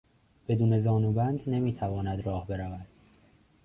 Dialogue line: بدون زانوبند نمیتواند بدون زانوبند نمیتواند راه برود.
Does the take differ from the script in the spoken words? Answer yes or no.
yes